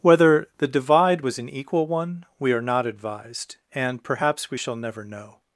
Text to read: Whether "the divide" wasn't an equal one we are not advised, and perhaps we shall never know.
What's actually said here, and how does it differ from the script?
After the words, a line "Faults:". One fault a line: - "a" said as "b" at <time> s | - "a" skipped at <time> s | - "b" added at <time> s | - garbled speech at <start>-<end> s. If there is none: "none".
Whether "the divide" was an equal one we are not advised, and perhaps we shall never know.
Faults:
- "wasn't" said as "was" at 1.2 s